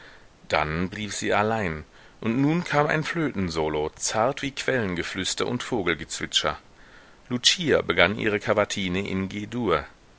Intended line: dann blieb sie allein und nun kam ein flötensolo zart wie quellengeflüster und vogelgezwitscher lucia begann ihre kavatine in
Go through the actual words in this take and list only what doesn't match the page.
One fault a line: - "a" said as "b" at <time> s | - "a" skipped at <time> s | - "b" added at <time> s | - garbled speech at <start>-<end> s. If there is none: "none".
none